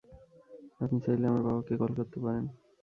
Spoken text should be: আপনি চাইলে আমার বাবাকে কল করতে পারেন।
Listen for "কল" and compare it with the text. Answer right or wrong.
right